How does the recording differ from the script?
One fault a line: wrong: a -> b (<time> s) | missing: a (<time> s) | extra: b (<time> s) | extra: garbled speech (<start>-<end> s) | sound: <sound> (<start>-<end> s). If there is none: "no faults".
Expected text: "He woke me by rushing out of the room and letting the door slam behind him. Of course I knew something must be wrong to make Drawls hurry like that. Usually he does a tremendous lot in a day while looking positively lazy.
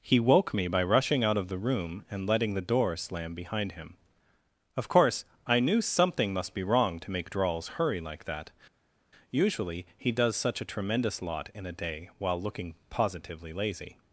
extra: such (10.4 s)